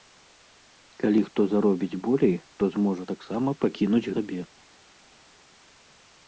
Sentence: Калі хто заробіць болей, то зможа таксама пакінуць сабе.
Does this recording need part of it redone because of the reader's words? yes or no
no